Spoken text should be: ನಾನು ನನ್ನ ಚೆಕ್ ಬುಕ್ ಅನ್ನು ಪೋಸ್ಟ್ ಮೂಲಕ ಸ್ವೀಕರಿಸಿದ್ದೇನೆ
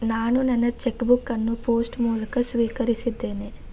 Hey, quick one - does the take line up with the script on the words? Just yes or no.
yes